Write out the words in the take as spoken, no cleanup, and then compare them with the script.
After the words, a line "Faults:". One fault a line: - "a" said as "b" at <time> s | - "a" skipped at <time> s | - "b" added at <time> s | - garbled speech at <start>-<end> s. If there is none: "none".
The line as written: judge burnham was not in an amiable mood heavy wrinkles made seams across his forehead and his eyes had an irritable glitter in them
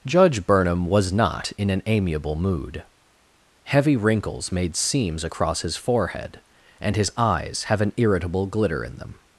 judge burnham was not in an amiable mood heavy wrinkles made seams across his forehead and his eyes have an irritable glitter in them
Faults:
- "had" said as "have" at 7.7 s